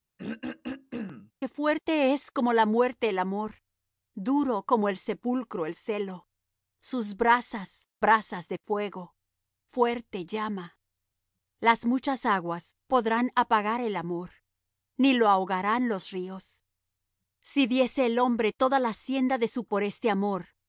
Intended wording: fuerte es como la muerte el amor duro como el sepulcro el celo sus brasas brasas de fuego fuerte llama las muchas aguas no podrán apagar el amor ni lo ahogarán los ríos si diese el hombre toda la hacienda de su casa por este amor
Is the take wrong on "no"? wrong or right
wrong